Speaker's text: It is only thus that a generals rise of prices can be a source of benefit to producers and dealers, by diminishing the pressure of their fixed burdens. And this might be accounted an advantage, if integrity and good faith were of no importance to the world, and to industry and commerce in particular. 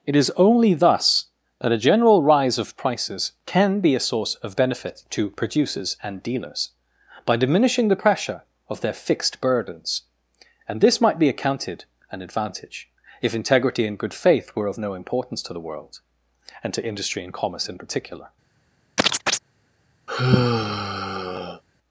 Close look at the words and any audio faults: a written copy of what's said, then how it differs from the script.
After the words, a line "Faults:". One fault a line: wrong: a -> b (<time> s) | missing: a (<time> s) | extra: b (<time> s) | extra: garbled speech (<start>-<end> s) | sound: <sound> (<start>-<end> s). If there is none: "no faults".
It is only thus that a general rise of prices can be a source of benefit to producers and dealers, by diminishing the pressure of their fixed burdens. And this might be accounted an advantage, if integrity and good faith were of no importance to the world, and to industry and commerce in particular.
Faults:
wrong: generals -> general (1.8 s)
sound: chirp (19.0-19.4 s)
sound: sigh (20.1-21.6 s)